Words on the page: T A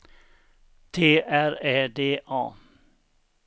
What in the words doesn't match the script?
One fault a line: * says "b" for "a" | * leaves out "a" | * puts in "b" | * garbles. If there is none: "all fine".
* puts in "R Ä D"